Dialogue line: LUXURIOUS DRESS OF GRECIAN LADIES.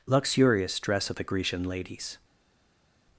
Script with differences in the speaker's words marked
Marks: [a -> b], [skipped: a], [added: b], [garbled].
LUXURIOUS DRESS OF [added: THE] GRECIAN LADIES.